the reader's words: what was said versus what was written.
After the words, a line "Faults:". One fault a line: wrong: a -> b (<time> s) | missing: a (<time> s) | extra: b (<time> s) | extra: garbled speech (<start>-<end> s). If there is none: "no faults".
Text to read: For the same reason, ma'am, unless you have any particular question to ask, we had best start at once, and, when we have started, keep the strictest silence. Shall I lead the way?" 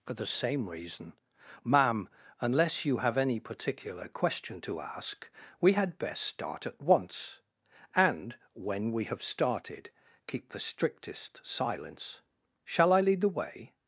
For the same reason, ma'am, unless you have any particular question to ask, we had best start at once, and, when we have started, keep the strictest silence. Shall I lead the way?"
Faults:
no faults